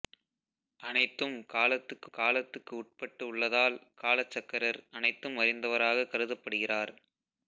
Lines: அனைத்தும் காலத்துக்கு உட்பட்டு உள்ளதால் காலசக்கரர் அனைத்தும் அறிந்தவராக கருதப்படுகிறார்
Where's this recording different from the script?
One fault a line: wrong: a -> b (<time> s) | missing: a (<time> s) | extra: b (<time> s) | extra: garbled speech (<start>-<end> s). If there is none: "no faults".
extra: காலத்துக்கு (2.1 s)